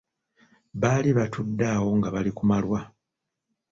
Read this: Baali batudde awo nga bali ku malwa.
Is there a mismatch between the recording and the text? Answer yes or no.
no